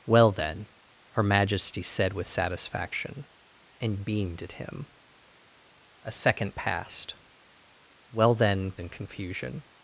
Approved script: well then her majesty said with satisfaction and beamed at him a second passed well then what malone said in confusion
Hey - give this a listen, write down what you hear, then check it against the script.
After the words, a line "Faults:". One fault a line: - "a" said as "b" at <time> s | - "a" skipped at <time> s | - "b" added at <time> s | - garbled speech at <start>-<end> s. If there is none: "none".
well then her majesty said with satisfaction and beamed at him a second passed well then in confusion
Faults:
- "what malone said" skipped at 8.7 s